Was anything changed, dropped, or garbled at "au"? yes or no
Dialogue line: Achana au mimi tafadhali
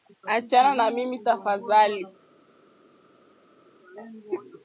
yes